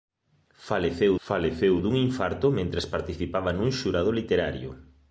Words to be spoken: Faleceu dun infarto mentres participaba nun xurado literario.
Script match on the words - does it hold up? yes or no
no